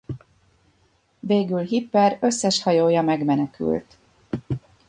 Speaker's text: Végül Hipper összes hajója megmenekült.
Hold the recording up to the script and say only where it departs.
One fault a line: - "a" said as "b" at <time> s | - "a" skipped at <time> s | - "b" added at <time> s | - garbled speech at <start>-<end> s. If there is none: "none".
none